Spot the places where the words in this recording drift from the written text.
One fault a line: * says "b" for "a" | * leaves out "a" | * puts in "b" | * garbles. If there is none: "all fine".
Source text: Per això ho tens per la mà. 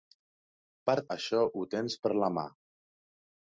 all fine